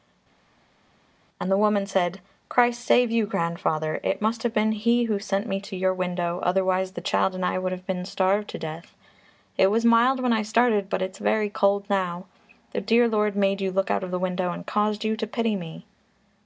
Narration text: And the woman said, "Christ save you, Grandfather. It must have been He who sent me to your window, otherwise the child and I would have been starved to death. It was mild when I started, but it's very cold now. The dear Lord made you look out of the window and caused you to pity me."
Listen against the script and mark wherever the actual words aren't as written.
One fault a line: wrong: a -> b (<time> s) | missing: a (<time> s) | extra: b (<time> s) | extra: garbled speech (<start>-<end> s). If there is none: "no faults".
no faults